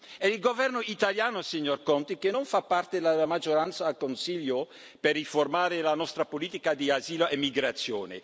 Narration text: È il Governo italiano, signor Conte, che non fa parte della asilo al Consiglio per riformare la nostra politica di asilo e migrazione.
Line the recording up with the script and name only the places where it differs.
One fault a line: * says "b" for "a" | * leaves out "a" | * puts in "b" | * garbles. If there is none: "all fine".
* says "maggioranza" for "asilo"